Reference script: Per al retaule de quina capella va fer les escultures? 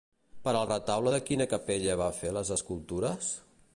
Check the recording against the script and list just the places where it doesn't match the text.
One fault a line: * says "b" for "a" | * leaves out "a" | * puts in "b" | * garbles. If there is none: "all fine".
all fine